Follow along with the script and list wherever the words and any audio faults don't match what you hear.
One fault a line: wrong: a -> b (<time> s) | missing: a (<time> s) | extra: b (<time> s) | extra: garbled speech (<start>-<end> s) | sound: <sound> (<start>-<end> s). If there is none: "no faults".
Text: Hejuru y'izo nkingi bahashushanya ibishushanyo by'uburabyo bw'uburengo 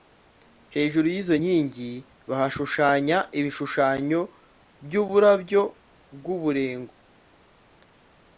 no faults